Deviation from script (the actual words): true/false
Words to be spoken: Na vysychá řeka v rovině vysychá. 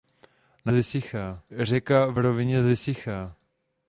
false